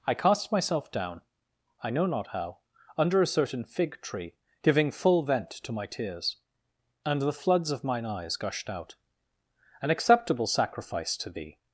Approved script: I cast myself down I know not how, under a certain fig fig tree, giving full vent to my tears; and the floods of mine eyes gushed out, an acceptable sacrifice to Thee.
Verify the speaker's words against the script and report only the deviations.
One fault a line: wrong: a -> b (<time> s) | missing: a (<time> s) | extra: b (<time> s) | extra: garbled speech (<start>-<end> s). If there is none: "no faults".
missing: fig (4.0 s)